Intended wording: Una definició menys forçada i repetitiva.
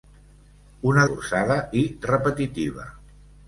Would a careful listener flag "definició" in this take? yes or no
yes